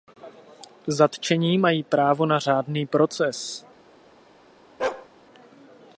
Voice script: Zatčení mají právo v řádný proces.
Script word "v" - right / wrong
wrong